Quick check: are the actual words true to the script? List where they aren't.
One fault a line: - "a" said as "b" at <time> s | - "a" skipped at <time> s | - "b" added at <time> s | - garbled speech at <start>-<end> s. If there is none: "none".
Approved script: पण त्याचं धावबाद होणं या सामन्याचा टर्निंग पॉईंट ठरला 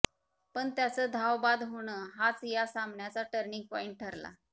- "हाच" added at 2.1 s